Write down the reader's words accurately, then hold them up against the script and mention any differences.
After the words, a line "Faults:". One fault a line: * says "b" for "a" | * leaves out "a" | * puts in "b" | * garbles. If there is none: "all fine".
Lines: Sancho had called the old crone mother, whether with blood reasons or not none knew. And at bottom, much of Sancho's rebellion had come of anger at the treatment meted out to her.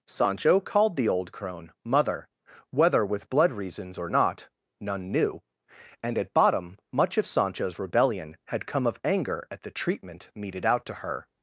Sancho called the old crone mother, whether with blood reasons or not none knew. And at bottom, much of Sancho's rebellion had come of anger at the treatment meted out to her.
Faults:
* leaves out "had"